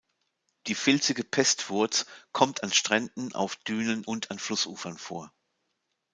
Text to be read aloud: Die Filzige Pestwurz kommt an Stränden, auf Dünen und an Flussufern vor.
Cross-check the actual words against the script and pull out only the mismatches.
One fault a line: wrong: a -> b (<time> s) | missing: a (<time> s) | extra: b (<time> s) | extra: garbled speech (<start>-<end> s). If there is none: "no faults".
no faults